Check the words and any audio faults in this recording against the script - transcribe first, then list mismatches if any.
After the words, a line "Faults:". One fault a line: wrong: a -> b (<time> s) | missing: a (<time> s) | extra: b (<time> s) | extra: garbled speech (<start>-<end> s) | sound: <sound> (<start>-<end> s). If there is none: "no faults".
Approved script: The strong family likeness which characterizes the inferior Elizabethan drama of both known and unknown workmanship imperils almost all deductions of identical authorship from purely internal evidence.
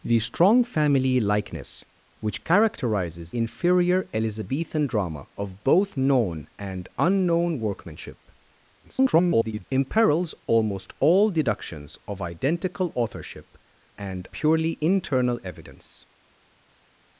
The strong family likeness which characterizes inferior Elizabethan drama of both known and unknown workmanship [garbled] imperils almost all deductions of identical authorship and purely internal evidence.
Faults:
missing: the (3.4 s)
extra: garbled speech (8.8-9.6 s)
wrong: from -> and (13.9 s)